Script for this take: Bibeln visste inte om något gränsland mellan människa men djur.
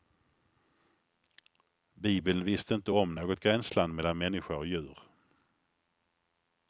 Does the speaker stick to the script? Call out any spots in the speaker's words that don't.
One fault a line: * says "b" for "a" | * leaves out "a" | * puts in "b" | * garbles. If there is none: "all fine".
* says "och" for "men"